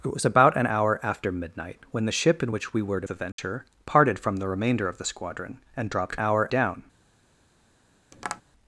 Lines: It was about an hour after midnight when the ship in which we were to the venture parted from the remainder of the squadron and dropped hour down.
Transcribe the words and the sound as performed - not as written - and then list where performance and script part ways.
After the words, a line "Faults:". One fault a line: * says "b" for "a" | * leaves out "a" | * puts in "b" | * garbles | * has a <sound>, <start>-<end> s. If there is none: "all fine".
It was about an hour after midnight when the ship in which we were to the venture parted from the remainder of the squadron and dropped hour down.
Faults:
* has a dropout, 3.3-3.4 s
* has a tap, 8.1-8.4 s